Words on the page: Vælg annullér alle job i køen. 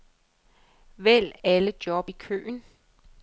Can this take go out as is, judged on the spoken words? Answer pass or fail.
fail